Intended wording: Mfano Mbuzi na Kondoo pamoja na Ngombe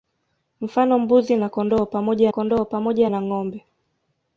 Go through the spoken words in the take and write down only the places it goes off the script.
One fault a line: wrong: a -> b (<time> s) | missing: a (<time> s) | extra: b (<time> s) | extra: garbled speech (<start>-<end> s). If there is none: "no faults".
extra: Kondoo pamoja (2.3 s)